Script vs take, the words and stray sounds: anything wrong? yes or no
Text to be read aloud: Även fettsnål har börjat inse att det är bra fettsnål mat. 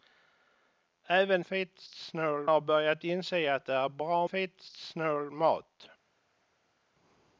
no